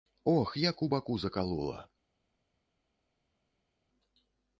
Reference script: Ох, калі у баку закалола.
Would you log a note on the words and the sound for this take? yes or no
yes